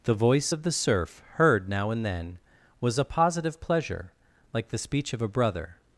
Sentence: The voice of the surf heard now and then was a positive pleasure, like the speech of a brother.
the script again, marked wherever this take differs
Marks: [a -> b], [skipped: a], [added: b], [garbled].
The voice of the surf heard now and then was a positive pleasure, like the speech of a brother.